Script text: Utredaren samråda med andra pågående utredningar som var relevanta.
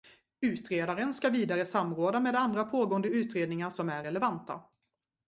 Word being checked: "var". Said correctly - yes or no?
no